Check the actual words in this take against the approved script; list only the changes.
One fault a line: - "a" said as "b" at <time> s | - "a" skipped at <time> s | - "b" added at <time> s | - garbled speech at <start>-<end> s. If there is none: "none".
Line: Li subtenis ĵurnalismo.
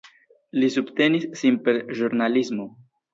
- "sin per" added at 1.4 s